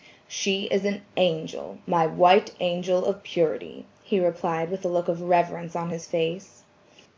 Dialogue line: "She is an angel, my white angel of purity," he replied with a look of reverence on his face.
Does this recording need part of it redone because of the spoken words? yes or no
no